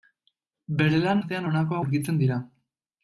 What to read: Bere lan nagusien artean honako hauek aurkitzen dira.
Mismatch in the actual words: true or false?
true